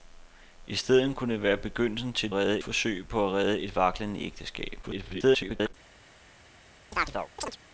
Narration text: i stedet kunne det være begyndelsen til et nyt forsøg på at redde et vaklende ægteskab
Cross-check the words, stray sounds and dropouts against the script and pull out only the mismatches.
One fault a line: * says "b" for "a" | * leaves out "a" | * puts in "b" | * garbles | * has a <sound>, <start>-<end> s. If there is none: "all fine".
* says "redde" for "nyt"
* garbles
* has a chirp, 6.9-7.6 s